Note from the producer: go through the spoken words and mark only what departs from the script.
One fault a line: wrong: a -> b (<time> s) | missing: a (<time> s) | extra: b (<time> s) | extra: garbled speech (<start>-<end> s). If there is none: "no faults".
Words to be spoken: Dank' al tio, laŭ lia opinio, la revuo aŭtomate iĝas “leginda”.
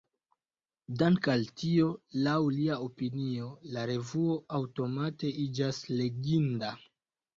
no faults